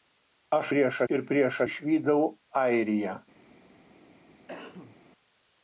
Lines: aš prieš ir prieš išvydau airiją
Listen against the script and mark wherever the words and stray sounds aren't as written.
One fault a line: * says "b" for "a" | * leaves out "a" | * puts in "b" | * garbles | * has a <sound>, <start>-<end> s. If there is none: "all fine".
* has a cough, 4.5-5.0 s